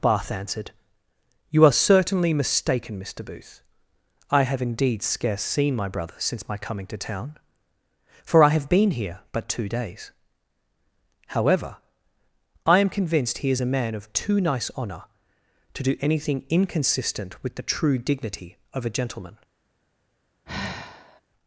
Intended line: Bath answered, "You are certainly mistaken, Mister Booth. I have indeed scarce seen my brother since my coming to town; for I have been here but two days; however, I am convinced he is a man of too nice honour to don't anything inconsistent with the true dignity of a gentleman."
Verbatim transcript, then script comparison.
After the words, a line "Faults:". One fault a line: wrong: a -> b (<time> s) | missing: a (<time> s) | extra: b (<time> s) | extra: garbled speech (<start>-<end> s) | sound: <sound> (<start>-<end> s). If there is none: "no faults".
Bath answered, "You are certainly mistaken, Mister Booth. I have indeed scarce seen my brother since my coming to town; for I have been here but two days; however, I am convinced he is a man of too nice honour to do anything inconsistent with the true dignity of a gentleman."
Faults:
wrong: don't -> do (15.8 s)
sound: sigh (20.5-21.2 s)